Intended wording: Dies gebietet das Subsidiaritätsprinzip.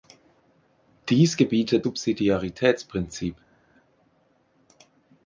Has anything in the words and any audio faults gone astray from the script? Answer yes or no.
yes